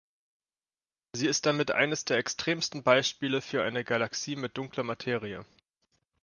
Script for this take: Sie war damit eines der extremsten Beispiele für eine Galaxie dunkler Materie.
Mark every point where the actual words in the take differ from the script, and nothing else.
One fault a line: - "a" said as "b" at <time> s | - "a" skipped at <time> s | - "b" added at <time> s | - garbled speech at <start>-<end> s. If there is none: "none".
- "war" said as "ist" at 1.3 s
- "mit" added at 4.3 s